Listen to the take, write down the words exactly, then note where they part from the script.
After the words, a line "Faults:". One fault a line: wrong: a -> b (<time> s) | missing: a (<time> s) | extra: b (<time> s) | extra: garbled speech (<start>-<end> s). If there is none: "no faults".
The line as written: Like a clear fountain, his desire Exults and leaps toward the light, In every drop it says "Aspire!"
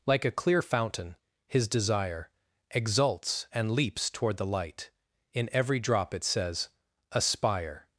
Like a clear fountain, his desire Exults and leaps toward the light, In every drop it says "Aspire!"
Faults:
no faults